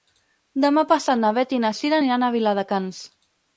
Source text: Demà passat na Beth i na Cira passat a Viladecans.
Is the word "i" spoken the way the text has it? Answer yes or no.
yes